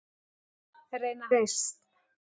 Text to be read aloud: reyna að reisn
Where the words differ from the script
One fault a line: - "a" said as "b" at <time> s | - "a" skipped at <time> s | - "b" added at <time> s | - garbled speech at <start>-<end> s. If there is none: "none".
none